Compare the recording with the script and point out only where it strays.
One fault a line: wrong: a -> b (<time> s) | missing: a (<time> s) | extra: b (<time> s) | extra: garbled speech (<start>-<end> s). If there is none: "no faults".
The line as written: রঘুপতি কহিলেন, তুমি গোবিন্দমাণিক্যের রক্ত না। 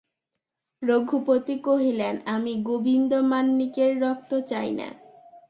wrong: তুমি -> আমি (2.3 s)
extra: চাই (4.5 s)